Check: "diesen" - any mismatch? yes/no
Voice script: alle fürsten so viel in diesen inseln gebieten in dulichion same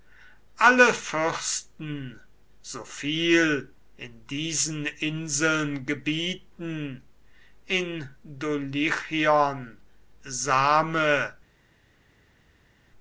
no